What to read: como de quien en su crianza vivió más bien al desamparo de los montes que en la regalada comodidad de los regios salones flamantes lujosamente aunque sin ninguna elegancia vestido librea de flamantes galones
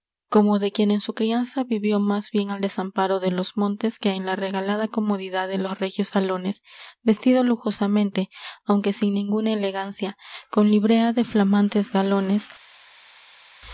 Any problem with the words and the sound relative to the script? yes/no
yes